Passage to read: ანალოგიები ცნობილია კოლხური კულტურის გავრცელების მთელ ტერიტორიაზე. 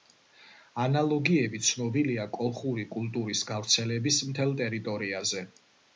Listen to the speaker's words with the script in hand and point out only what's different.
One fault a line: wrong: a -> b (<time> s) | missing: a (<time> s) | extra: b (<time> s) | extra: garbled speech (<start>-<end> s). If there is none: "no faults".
no faults